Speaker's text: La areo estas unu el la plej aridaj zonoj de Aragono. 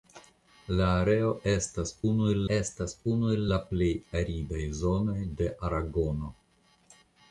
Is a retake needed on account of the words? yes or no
yes